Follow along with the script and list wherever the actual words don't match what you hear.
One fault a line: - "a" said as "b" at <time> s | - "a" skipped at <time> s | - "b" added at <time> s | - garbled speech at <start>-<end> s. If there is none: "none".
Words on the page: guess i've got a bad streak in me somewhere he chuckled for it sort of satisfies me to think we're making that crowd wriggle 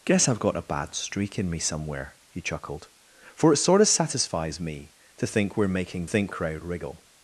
- "that" said as "think" at 6.0 s